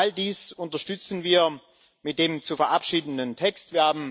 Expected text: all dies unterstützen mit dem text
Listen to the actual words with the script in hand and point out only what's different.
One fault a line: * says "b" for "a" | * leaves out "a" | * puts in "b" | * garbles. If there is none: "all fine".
* puts in "wir"
* puts in "zu verabschiedenden"